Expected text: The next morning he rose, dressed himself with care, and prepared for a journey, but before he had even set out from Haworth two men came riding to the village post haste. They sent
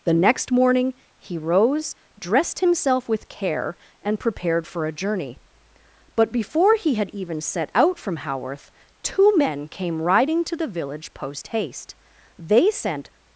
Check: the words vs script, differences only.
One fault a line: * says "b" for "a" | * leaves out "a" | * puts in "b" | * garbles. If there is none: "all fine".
all fine